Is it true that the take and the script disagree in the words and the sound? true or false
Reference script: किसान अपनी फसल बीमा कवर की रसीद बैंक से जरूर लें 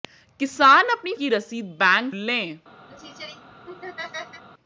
true